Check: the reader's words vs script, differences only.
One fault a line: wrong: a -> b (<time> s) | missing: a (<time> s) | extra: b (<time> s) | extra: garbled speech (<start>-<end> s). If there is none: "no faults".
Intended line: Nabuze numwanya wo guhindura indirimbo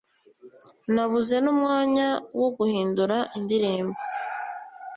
no faults